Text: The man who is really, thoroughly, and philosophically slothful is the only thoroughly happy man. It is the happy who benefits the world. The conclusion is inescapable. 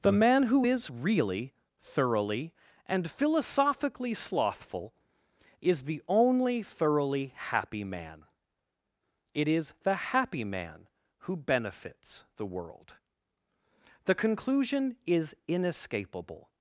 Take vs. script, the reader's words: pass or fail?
fail